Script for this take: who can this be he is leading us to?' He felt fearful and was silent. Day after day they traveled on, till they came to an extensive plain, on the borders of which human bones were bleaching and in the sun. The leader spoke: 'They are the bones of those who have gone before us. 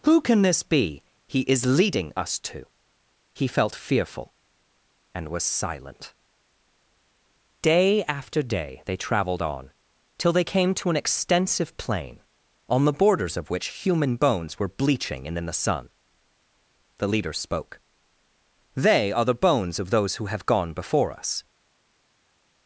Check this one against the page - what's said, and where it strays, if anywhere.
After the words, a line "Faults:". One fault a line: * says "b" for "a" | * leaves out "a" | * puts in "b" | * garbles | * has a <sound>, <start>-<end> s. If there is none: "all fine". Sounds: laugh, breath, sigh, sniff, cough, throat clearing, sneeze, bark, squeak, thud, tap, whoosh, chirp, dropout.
who can this be he is leading us to?' He felt fearful and was silent. Day after day they traveled on, till they came to an extensive plain, on the borders of which human bones were bleaching and in the sun. The leader spoke: 'They are the bones of those who have gone before us.
Faults:
all fine